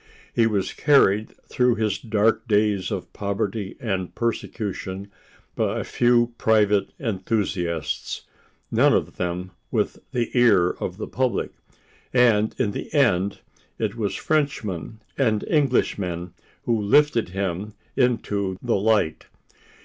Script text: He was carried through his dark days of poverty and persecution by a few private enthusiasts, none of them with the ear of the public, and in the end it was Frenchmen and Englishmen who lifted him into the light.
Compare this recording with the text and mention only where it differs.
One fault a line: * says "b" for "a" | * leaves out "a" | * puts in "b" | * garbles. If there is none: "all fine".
all fine